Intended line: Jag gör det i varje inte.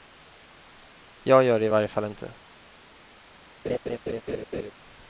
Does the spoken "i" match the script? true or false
true